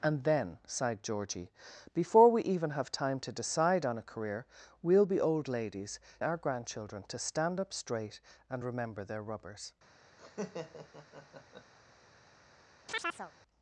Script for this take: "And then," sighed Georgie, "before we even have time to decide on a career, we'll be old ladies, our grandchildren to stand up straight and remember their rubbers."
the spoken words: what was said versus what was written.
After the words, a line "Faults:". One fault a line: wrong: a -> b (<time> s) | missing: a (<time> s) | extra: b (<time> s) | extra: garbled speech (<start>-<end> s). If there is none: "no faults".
"And then," sighed Georgie, "before we even have time to decide on a career, we'll be old ladies, our grandchildren to stand up straight and remember their rubbers."
Faults:
no faults